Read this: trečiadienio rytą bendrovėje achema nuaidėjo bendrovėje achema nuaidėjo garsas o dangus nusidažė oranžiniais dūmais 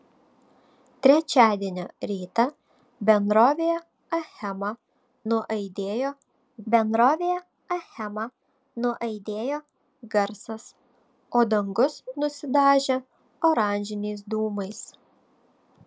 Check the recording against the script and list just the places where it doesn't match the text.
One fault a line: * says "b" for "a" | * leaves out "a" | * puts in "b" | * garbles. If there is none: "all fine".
all fine